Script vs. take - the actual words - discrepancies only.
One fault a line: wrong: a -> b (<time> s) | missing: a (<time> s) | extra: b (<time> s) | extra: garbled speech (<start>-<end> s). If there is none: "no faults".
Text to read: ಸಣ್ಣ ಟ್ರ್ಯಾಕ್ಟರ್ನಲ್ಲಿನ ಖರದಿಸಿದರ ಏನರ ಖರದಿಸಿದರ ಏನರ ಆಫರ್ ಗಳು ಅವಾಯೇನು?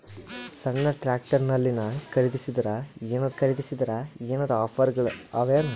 no faults